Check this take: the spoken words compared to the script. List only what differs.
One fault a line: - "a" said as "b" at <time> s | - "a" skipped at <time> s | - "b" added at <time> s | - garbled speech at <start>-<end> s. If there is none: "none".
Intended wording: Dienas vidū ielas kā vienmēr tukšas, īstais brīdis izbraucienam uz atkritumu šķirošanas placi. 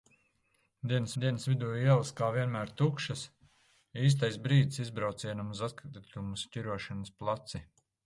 - "dienas" added at 1.2 s